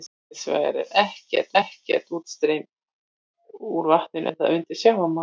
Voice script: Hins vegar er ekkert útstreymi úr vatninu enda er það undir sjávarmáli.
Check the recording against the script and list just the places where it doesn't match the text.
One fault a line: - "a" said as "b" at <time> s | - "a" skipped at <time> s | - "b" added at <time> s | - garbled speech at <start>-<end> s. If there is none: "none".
- "ekkert" added at 1.6 s
- "enda" skipped at 4.3 s